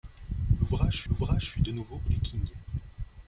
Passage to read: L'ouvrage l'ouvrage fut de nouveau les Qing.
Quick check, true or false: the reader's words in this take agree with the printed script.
true